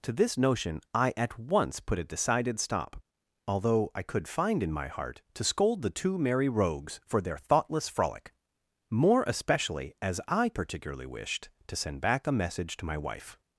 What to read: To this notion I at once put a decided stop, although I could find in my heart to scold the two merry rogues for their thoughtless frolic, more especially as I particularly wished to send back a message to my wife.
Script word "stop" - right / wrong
right